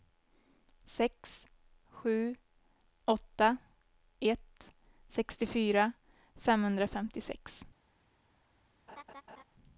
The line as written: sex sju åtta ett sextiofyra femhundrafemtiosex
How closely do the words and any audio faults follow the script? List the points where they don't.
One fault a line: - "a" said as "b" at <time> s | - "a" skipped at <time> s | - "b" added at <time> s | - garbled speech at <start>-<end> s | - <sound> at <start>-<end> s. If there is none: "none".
- laugh at 8.9-9.4 s